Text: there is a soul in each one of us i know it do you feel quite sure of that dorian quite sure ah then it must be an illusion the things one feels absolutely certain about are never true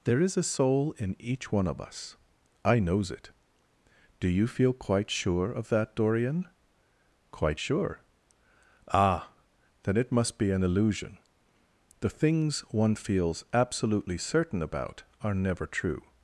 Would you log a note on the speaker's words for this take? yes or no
yes